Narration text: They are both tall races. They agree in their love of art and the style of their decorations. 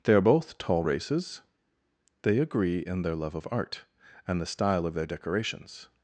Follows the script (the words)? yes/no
yes